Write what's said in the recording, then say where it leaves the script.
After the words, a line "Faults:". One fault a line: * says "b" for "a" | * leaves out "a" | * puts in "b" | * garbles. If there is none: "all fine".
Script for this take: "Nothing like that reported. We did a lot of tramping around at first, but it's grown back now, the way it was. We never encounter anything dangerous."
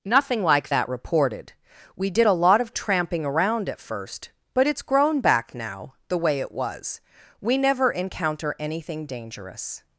"Nothing like that reported. We did a lot of tramping around at first, but it's grown back now, the way it was. We never encounter anything dangerous."
Faults:
all fine